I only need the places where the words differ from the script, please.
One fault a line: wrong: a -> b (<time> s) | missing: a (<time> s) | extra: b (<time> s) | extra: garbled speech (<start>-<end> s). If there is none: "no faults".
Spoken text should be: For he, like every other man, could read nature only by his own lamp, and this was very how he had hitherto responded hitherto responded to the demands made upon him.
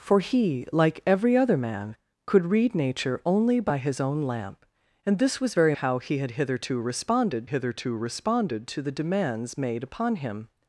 no faults